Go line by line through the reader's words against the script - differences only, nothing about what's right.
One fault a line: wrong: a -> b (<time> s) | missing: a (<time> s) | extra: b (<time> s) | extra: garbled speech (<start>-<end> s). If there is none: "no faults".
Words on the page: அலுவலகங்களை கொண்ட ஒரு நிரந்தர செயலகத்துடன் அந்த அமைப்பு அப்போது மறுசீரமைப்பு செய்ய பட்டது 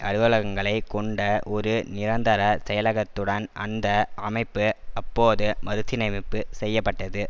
no faults